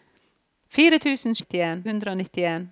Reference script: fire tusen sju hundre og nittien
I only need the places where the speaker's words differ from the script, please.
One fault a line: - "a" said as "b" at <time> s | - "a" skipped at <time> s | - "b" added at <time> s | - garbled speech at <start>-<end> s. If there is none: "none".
- "sju" said as "nittien" at 1.4 s